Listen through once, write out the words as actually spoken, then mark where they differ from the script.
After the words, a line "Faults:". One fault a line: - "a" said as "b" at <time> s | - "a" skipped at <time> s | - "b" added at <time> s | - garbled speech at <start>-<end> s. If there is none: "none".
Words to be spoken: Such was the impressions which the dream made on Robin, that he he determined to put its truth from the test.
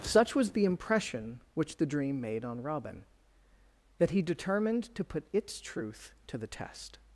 Such was the impression which the dream made on Robin, that he determined to put its truth to the test.
Faults:
- "impressions" said as "impression" at 0.7 s
- "he" skipped at 4.2 s
- "from" said as "to" at 6.3 s